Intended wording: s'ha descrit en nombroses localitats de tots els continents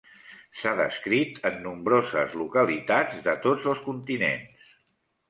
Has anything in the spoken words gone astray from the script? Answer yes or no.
no